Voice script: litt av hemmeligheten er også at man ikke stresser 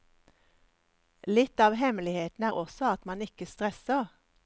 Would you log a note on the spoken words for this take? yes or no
no